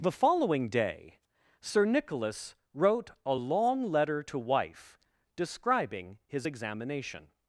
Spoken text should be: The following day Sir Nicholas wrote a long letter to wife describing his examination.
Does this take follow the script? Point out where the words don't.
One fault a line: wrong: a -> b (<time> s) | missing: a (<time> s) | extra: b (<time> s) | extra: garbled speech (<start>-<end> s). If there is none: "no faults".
no faults